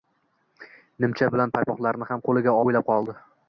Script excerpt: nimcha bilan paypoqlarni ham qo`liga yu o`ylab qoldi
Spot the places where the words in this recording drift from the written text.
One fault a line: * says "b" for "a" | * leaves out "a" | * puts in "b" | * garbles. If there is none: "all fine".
all fine